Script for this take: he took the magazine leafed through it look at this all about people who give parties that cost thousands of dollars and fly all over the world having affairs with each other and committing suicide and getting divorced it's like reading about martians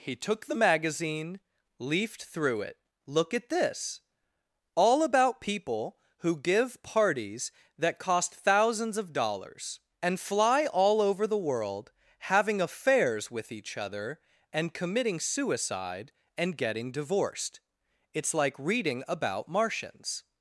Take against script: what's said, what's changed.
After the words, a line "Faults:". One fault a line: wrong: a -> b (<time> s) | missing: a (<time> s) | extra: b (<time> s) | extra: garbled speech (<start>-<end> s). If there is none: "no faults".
he took the magazine leafed through it look at this all about people who give parties that cost thousands of dollars and fly all over the world having affairs with each other and committing suicide and getting divorced it's like reading about martians
Faults:
no faults